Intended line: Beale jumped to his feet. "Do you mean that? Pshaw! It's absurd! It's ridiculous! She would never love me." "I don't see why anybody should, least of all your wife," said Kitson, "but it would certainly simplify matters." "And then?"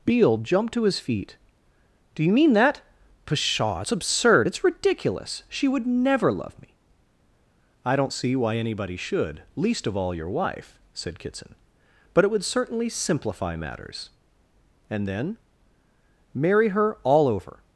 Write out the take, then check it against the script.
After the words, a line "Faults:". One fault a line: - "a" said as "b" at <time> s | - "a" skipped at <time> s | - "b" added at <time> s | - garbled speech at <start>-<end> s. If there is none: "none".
Beale jumped to his feet. "Do you mean that? Pshaw! It's absurd! It's ridiculous! She would never love me." "I don't see why anybody should, least of all your wife," said Kitson, "but it would certainly simplify matters." "And then?" "Marry her all over
Faults:
- "Marry her all over" added at 16.3 s